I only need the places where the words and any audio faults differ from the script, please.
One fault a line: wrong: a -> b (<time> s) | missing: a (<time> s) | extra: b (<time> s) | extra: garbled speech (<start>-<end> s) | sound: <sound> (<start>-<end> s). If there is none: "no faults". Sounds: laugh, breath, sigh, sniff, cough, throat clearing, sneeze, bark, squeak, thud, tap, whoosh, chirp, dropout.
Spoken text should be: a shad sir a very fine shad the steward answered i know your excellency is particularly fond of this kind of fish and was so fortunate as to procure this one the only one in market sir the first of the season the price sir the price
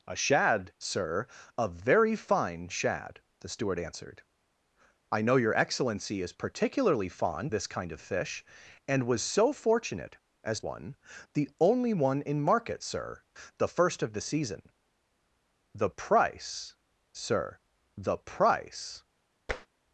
missing: of (7.5 s)
missing: to procure this (10.6 s)
sound: tap (19.5-19.7 s)